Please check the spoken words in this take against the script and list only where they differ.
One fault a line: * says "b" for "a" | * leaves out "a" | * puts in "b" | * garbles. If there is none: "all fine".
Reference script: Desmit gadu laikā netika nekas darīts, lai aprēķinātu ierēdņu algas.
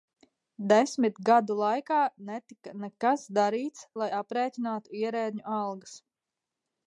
all fine